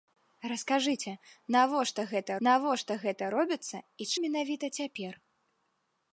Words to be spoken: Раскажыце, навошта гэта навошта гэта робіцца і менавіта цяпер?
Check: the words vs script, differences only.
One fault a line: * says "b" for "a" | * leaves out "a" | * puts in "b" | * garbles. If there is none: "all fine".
all fine